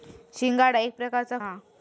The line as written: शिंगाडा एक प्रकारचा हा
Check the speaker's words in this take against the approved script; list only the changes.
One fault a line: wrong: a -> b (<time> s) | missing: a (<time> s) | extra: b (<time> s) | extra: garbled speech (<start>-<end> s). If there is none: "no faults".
no faults